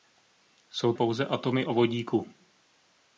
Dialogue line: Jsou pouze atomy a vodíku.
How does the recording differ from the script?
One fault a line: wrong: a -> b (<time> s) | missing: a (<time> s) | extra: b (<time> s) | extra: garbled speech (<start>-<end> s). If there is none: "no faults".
no faults